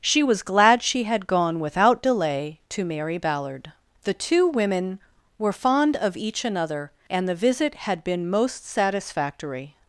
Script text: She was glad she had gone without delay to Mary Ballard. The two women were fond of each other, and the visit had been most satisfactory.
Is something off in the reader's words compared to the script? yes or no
yes